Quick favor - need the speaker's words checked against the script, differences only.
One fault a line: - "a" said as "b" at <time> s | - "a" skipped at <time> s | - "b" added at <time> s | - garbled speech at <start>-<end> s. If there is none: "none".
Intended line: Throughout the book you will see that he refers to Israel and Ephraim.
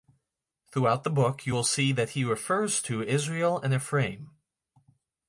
none